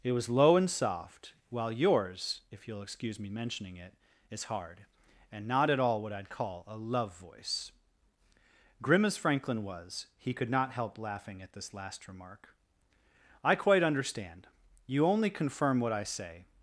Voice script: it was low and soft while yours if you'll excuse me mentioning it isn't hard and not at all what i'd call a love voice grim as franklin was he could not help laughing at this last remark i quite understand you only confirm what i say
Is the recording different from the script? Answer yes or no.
yes